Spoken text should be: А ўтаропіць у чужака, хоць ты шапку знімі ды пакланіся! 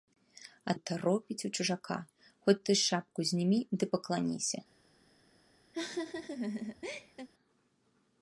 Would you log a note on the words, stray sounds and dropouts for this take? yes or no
yes